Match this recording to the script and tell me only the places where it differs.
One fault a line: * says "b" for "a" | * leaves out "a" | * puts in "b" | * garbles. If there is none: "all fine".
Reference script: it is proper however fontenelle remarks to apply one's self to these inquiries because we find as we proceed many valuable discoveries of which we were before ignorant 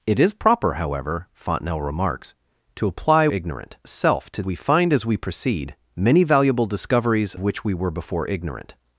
* says "ignorant" for "one's"
* leaves out "these inquiries because"
* leaves out "of"